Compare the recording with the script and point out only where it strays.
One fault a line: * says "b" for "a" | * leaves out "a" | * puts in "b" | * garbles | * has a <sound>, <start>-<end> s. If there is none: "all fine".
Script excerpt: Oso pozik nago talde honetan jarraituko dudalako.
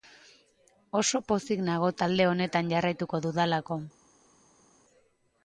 all fine